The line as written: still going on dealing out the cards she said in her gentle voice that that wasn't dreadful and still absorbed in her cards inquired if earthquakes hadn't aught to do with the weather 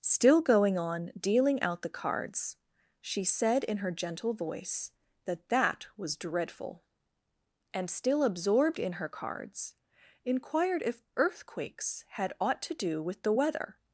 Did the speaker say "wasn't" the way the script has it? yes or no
no